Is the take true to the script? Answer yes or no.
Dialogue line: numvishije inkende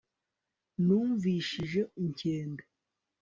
yes